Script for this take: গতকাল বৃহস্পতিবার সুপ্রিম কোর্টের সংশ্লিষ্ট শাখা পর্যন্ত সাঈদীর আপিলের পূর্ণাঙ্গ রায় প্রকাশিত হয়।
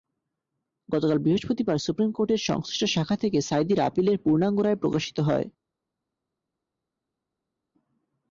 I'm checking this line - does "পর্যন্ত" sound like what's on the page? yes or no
no